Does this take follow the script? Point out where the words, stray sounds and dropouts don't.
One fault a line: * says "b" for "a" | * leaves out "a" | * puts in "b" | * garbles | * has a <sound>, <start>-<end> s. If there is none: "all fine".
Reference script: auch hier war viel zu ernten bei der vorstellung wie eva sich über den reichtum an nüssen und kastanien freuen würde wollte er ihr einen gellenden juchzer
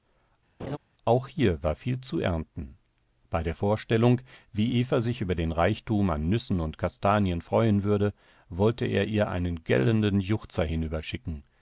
* has a laugh, 0.6-0.8 s